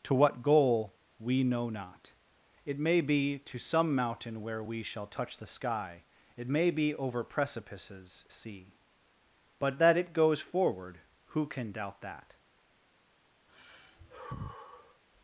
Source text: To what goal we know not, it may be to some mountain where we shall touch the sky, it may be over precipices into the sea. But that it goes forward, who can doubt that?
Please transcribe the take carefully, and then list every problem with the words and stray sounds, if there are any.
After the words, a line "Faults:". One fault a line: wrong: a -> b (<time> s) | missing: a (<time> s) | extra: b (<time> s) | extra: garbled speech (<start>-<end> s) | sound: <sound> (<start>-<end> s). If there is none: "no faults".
To what goal we know not, it may be to some mountain where we shall touch the sky, it may be over precipices sea. But that it goes forward, who can doubt that?
Faults:
missing: into the (8.3 s)
sound: sigh (13.5-15.0 s)